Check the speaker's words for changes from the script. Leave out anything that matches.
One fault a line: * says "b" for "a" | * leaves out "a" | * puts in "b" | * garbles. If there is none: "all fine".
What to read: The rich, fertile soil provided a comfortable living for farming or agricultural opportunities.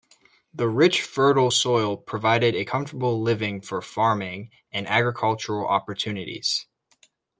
* says "and" for "or"